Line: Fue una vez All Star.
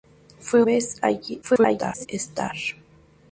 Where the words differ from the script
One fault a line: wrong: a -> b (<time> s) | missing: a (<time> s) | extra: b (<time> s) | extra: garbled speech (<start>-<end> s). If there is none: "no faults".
missing: una (0.7 s)
extra: garbled speech (1.4-2.1 s)